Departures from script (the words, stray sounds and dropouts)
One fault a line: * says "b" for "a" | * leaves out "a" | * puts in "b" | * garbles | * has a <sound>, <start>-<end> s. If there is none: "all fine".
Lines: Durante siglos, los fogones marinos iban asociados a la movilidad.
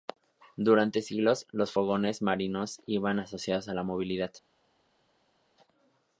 all fine